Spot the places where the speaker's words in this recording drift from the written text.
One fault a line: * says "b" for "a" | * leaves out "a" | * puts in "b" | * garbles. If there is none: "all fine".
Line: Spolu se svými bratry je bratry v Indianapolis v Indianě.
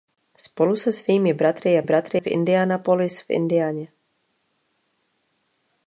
all fine